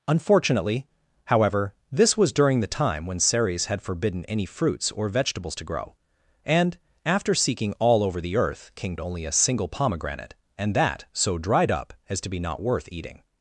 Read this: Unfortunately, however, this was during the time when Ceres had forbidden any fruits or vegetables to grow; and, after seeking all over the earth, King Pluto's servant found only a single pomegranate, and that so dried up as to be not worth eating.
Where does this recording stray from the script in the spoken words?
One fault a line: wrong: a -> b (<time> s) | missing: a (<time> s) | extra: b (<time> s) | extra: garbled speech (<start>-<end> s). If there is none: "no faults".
missing: Pluto's servant found (9.0 s)